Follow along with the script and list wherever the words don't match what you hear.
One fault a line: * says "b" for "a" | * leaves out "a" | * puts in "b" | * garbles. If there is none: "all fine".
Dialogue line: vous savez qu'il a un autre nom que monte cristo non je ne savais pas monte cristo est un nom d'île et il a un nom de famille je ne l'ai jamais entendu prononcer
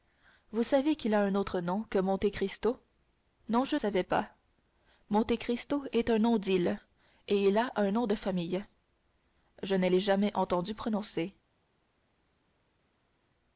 * leaves out "ne"